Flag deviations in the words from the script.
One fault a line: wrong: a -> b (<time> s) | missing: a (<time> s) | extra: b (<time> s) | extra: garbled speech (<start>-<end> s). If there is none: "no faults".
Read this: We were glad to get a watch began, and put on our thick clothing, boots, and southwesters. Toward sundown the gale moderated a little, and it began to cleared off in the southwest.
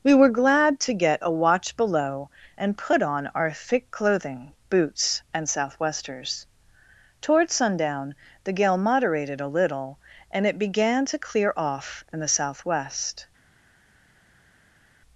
wrong: began -> below (1.8 s)
wrong: cleared -> clear (11.2 s)